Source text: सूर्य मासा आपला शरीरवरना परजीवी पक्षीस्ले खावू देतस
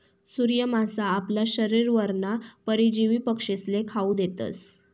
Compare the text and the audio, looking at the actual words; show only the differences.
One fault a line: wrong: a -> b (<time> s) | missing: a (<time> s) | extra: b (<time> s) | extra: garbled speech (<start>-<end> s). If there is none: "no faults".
no faults